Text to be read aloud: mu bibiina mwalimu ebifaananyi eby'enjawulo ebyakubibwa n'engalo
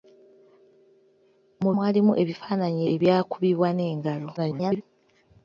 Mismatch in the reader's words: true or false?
true